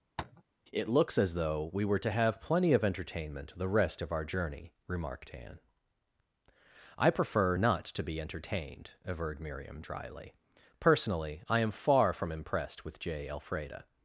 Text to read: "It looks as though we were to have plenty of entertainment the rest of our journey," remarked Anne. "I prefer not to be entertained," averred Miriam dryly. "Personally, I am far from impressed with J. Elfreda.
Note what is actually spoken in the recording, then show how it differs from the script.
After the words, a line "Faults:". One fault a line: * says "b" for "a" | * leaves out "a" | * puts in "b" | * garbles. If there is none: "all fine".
"It looks as though we were to have plenty of entertainment the rest of our journey," remarked Anne. "I prefer not to be entertained," averred Miriam dryly. "Personally, I am far from impressed with J. Elfreda.
Faults:
all fine